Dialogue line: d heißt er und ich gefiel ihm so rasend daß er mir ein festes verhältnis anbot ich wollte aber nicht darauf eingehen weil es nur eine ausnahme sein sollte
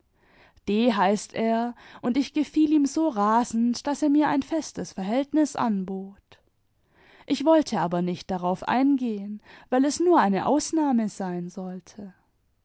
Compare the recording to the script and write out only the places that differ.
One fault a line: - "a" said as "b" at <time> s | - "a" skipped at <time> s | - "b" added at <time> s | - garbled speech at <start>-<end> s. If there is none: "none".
none